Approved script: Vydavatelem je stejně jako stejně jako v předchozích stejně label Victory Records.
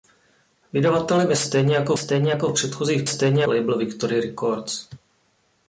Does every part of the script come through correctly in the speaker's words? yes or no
yes